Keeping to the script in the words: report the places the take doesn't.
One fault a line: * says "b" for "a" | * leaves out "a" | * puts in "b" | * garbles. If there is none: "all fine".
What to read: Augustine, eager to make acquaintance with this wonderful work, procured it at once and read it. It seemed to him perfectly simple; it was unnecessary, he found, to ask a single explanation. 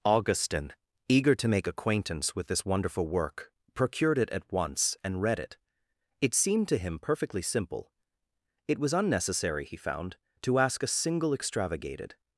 * says "extravagated" for "explanation"